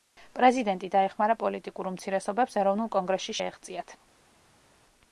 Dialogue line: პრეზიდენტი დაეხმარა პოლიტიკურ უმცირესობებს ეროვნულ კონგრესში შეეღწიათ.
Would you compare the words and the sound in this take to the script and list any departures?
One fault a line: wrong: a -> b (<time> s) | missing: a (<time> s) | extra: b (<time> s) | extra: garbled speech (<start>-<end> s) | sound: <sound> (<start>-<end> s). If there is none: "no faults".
no faults